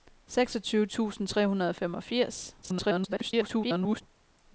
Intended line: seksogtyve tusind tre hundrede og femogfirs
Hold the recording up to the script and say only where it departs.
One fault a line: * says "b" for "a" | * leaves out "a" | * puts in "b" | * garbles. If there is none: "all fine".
* garbles